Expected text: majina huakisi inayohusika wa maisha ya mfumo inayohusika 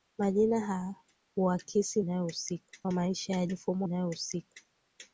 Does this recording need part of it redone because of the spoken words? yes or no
no